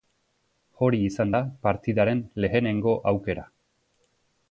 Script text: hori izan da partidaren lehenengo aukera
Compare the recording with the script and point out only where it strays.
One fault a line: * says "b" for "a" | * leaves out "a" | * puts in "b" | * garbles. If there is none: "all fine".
all fine